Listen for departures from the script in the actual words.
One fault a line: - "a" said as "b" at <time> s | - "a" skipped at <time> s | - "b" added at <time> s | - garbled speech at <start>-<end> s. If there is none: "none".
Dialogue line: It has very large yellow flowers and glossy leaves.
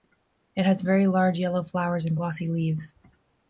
none